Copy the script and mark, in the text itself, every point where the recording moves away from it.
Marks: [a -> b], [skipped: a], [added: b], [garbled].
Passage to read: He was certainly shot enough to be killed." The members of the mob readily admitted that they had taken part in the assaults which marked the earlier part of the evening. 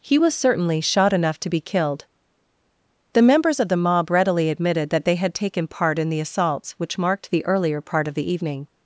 He was certainly shot enough to be killed." The members of the mob readily admitted that they had taken part in the assaults which marked the earlier part of the evening.